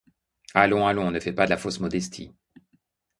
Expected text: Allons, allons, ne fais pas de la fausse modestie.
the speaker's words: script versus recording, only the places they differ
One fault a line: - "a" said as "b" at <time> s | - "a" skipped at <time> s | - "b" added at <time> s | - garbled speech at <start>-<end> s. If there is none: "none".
none